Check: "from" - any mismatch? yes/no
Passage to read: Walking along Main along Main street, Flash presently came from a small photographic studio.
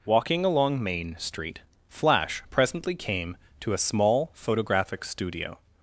yes